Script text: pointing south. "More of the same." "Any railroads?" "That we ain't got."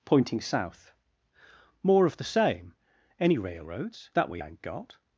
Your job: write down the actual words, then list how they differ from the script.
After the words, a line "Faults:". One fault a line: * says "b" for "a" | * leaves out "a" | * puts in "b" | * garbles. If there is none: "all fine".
pointing south. "More of the same." "Any railroads?" "That we ain't got."
Faults:
all fine